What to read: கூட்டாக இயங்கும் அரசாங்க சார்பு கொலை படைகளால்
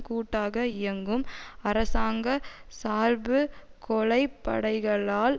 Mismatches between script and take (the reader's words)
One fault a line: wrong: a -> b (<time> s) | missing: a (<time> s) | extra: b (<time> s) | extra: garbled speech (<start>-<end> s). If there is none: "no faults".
no faults